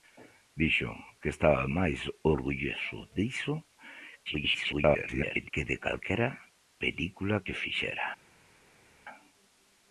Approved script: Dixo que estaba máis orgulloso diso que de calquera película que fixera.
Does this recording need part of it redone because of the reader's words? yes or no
yes